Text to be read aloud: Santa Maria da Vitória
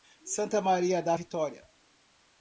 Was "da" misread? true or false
false